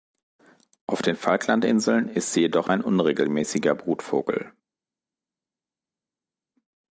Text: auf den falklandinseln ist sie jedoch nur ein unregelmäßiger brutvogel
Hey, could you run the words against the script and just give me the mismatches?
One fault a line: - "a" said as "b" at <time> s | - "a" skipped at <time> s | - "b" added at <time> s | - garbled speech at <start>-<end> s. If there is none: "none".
- "nur" skipped at 2.7 s